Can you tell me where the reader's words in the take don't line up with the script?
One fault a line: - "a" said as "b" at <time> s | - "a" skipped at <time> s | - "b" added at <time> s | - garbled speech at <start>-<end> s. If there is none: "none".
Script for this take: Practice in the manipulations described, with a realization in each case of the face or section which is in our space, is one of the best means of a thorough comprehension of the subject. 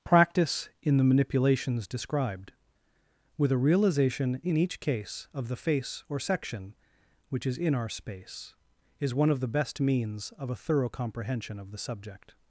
none